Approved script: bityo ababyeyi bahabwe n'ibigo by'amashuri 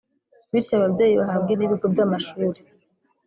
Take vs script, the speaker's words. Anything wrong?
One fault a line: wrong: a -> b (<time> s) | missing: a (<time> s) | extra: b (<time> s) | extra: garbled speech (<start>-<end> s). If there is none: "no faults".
no faults